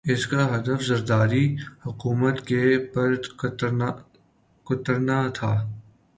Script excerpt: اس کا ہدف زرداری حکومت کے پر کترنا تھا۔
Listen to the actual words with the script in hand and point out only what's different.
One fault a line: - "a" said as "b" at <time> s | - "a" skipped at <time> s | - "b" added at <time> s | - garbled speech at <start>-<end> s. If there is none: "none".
none